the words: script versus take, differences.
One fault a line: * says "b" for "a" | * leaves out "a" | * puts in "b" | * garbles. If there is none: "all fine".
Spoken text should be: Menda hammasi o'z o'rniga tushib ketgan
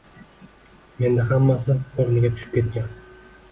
* leaves out "o'z"